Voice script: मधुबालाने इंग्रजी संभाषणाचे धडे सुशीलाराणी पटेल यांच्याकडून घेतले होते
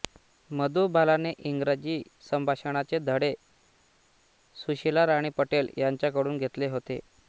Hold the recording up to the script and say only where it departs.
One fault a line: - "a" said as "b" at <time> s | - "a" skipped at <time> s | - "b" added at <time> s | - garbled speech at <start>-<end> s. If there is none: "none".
none